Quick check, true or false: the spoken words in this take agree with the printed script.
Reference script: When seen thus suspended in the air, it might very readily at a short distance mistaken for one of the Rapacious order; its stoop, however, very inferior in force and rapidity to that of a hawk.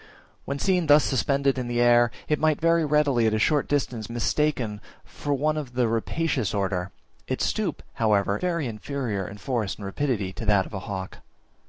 true